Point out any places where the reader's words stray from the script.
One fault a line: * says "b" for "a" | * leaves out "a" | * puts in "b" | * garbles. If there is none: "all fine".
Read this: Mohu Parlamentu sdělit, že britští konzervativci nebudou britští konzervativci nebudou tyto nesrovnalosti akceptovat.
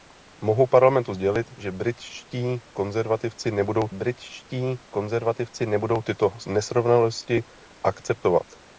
all fine